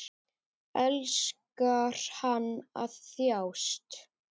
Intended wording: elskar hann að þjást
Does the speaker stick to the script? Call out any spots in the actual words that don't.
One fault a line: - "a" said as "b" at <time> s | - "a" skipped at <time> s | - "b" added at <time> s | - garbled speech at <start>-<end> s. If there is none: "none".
none